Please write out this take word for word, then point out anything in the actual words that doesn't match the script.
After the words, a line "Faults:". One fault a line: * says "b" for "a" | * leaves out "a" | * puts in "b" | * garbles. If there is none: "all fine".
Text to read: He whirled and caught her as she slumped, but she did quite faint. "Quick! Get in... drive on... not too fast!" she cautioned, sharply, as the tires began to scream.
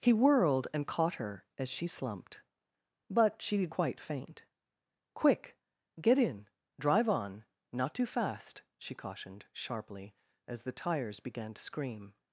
He whirled and caught her as she slumped, but she did quite faint. "Quick! Get in... drive on... not too fast!" she cautioned, sharply, as the tires began to scream.
Faults:
all fine